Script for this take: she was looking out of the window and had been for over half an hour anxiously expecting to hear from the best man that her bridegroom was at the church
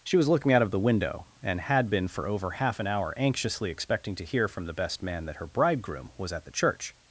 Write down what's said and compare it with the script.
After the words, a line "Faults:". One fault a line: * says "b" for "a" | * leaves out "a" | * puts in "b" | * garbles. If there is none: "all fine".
she was looking out of the window and had been for over half an hour anxiously expecting to hear from the best man that her bridegroom was at the church
Faults:
all fine